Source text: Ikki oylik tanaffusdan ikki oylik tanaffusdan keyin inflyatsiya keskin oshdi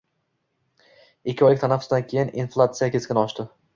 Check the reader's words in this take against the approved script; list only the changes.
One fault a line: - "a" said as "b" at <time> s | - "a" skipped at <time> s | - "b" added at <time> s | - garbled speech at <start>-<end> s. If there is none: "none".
- "ikki oylik tanaffusdan" skipped at 2.1 s